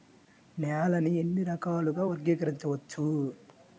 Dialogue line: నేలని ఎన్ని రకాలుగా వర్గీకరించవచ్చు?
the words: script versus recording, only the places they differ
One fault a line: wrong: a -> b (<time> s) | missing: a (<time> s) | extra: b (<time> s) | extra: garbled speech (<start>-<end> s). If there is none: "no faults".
no faults